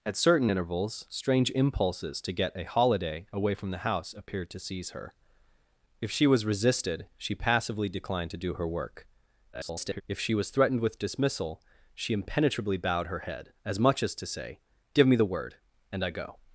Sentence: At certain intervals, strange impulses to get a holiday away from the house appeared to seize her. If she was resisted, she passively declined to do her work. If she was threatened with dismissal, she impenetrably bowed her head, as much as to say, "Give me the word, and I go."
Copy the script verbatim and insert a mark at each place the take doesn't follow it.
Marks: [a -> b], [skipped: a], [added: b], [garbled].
At certain intervals, strange impulses to get a holiday away from the house appeared to seize her. If she was resisted, she passively declined to do her work. [garbled] If she was threatened with dismissal, she impenetrably bowed her head, as much as to say, "Give me the word, and I go."